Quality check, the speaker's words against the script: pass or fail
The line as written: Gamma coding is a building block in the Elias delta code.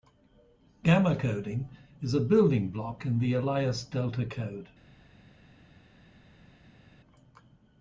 pass